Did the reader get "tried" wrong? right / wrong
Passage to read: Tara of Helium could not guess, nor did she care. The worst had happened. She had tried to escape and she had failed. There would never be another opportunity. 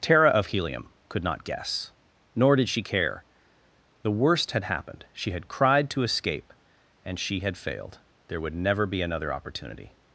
wrong